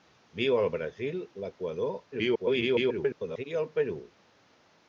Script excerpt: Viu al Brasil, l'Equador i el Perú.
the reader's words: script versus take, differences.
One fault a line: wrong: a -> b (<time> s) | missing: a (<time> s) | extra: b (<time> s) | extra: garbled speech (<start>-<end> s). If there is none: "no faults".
extra: garbled speech (2.1-3.4 s)